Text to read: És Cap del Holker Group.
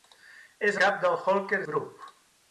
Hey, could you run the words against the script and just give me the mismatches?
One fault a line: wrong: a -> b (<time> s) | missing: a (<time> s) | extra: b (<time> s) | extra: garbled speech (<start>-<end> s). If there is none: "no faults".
no faults